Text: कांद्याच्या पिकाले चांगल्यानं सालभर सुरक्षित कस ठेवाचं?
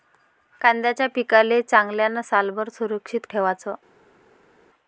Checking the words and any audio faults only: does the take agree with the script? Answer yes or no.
no